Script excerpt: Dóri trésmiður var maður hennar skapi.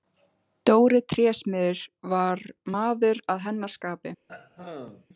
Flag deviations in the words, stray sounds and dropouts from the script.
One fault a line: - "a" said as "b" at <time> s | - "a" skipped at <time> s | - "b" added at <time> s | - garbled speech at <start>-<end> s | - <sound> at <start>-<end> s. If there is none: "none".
- "að" added at 3.3 s
- throat clearing at 4.3-5.1 s